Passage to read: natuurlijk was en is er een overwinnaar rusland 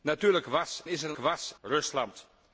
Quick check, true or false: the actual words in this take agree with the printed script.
false